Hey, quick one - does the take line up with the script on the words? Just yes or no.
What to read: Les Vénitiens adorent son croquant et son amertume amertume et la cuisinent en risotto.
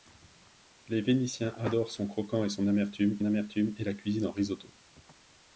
yes